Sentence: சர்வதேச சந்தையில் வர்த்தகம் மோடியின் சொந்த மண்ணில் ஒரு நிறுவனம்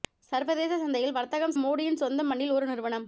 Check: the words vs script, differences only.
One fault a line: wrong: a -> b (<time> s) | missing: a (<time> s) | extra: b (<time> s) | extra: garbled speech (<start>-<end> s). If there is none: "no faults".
no faults